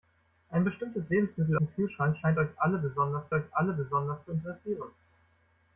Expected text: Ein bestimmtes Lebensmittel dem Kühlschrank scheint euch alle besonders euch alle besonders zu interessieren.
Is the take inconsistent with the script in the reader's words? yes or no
no